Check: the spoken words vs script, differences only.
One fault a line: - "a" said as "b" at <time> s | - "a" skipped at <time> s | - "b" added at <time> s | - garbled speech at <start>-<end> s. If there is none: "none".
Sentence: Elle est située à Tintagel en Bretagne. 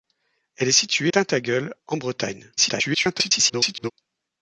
- "à" skipped at 1.1 s
- garbled speech at 2.6-3.9 s